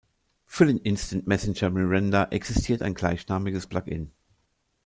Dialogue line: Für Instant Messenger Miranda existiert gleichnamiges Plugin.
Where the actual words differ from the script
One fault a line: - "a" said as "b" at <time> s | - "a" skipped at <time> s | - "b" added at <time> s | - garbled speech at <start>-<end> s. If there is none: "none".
- "den" added at 0.7 s
- "ein" added at 2.8 s